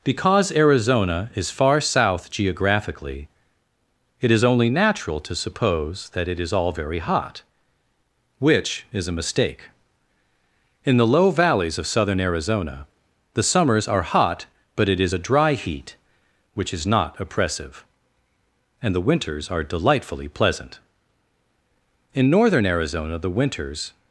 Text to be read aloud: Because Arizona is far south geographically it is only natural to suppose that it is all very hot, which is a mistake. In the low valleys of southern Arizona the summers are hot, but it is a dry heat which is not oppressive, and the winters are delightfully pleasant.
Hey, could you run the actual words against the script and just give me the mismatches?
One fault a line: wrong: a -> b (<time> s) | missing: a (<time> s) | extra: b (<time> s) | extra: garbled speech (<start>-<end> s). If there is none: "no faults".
extra: In northern Arizona the winters (22.1 s)